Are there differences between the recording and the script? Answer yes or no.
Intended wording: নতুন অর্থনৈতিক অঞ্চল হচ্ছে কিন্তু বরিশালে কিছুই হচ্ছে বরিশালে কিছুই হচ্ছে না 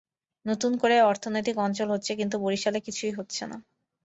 yes